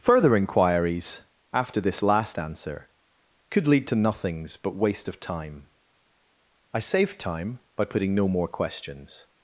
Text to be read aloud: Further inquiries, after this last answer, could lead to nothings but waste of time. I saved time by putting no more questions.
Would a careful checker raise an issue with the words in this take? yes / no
no